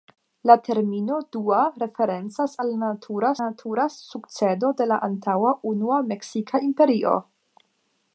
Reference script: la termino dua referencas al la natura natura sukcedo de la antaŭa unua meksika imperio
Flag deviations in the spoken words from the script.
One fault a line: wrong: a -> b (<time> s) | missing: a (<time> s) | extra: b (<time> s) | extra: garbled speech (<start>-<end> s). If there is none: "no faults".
no faults